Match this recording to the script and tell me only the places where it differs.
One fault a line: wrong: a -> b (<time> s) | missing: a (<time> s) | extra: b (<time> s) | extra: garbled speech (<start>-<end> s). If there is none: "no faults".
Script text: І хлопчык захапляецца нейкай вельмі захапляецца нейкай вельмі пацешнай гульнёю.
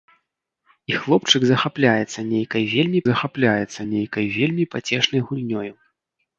no faults